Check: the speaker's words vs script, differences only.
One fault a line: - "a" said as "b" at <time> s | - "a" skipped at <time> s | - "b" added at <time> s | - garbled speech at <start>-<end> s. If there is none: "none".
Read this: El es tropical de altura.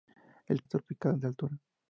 none